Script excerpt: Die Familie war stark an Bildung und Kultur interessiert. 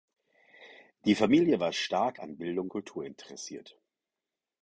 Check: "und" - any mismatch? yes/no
yes